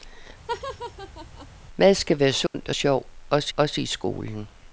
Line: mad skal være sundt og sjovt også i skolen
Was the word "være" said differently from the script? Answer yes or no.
no